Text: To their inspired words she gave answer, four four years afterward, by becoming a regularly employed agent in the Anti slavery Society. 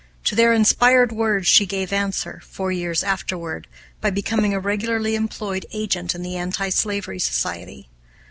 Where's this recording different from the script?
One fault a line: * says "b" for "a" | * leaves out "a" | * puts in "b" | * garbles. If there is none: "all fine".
* leaves out "four"